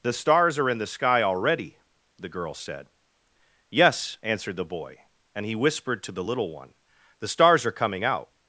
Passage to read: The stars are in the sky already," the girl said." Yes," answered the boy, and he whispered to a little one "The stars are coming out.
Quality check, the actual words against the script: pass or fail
fail